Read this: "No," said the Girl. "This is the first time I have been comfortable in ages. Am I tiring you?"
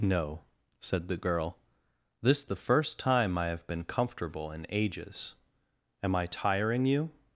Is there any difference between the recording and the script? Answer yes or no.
yes